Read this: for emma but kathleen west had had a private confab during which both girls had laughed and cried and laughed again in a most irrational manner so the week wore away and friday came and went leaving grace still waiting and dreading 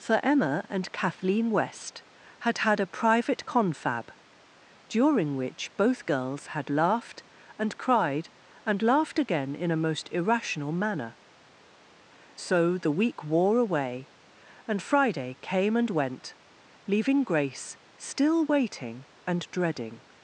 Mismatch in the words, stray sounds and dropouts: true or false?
true